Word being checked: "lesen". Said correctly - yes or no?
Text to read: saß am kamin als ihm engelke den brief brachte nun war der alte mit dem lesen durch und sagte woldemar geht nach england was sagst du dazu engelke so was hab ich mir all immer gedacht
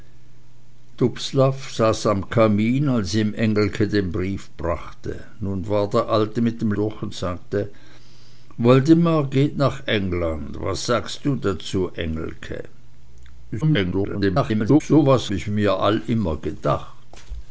no